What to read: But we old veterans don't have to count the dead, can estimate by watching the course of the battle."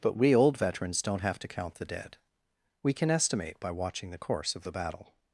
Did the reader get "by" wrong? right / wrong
right